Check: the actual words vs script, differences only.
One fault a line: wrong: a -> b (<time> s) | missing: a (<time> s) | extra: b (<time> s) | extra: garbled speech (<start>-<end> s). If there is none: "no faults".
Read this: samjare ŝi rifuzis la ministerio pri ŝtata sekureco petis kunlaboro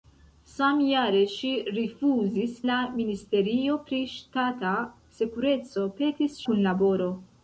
no faults